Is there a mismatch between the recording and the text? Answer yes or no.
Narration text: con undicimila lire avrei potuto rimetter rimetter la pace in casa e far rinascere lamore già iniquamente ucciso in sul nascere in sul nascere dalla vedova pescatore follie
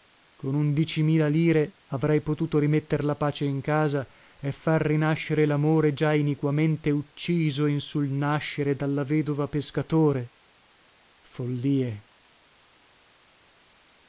yes